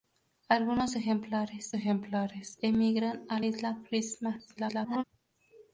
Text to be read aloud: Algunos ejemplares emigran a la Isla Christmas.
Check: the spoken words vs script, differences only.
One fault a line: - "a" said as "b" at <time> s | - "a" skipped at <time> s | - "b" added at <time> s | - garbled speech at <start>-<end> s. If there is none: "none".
- "ejemplares" added at 1.7 s
- "la" skipped at 3.4 s
- garbled speech at 4.6-5.0 s